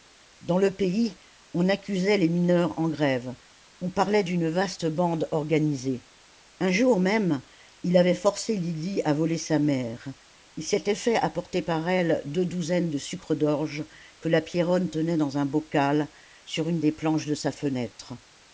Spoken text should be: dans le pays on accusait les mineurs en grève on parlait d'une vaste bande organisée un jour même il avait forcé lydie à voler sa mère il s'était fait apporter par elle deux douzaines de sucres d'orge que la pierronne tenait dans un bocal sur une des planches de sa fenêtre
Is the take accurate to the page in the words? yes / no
yes